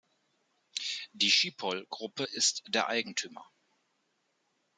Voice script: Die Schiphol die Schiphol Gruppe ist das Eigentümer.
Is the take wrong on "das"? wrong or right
wrong